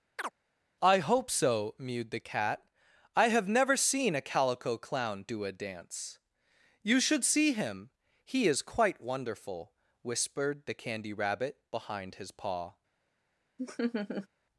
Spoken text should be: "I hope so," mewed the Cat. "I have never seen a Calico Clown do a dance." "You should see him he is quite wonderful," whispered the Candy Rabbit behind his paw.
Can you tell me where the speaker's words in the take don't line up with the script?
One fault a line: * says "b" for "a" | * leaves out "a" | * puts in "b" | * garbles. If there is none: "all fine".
all fine